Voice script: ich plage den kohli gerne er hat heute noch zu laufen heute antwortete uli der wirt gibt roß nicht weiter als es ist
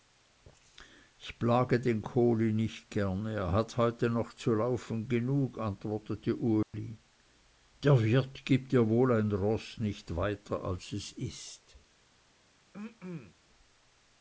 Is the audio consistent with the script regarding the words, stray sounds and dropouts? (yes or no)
no